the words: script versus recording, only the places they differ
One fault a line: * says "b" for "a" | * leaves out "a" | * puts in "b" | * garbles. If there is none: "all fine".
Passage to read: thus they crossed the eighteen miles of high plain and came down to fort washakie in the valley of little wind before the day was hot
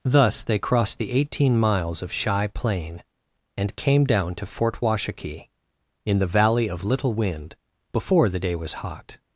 * says "shy" for "high"